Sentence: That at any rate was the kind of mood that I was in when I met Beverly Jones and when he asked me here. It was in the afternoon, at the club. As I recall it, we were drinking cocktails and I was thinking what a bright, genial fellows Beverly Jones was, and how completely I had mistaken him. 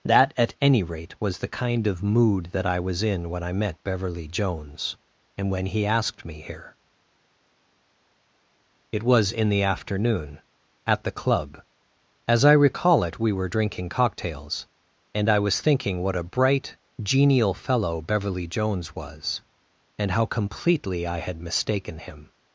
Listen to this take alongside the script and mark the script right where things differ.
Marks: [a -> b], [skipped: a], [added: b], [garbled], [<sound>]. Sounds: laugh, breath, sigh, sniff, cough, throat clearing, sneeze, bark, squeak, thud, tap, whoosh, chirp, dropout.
That at any rate was the kind of mood that I was in when I met Beverly Jones and when he asked me here. It was in the afternoon, at the club. As I recall it, we were drinking cocktails and I was thinking what a bright, genial [fellows -> fellow] Beverly Jones was, and how completely I had mistaken him.